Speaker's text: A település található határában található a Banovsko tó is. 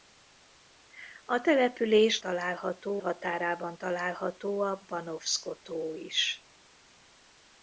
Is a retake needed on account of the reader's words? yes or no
no